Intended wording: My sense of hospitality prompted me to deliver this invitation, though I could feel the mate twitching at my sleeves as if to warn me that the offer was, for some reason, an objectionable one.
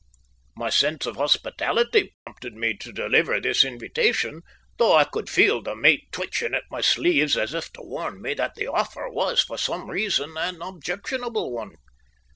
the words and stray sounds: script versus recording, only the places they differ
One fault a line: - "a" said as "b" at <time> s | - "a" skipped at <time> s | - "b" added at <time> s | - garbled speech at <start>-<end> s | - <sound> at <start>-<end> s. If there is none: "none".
- dropout at 2.1-2.3 s